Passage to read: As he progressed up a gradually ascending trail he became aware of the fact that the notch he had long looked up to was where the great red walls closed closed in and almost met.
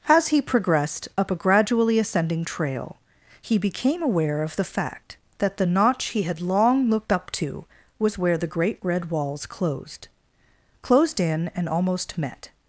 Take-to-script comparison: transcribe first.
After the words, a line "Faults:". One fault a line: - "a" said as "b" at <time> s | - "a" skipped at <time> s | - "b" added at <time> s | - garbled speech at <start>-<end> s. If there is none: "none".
As he progressed up a gradually ascending trail he became aware of the fact that the notch he had long looked up to was where the great red walls closed closed in and almost met.
Faults:
none